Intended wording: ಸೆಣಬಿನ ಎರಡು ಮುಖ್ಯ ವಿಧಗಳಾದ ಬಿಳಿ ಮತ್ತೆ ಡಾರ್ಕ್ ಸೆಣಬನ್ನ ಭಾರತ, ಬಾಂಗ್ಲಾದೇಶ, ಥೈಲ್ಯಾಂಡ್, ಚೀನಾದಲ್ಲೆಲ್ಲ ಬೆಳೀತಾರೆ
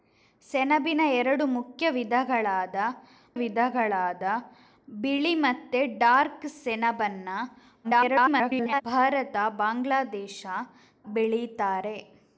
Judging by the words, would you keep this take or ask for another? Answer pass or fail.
fail